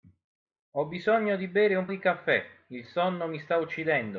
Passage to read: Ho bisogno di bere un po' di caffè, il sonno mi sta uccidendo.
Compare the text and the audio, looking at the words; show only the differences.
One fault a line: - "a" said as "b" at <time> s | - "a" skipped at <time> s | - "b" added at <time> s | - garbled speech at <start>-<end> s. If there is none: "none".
- "po" skipped at 1.9 s